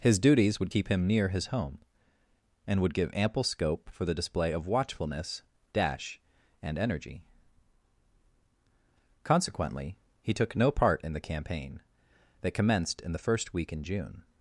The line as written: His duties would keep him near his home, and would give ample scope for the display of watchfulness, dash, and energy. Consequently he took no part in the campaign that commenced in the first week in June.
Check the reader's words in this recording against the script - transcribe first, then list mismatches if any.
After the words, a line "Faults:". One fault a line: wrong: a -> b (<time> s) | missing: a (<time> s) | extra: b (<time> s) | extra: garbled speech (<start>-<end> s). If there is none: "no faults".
His duties would keep him near his home, and would give ample scope for the display of watchfulness, dash, and energy. Consequently he took no part in the campaign that commenced in the first week in June.
Faults:
no faults